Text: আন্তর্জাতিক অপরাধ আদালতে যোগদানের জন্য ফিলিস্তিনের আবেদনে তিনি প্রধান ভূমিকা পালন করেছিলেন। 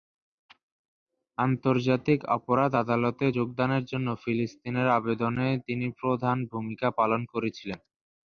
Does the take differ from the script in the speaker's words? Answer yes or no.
no